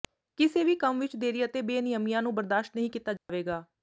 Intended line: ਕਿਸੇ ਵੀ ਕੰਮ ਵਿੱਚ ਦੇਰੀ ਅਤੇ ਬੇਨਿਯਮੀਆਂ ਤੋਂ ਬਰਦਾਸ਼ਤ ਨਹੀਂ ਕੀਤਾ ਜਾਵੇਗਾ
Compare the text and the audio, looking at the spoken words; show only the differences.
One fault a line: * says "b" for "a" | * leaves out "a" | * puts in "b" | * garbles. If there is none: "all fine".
* says "ਨੂੰ" for "ਤੋਂ"